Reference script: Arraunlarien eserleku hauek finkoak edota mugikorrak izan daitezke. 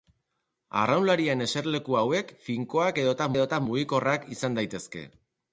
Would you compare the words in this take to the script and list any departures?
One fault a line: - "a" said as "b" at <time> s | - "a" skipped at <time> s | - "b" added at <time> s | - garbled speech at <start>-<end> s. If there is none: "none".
- "edota" added at 3.4 s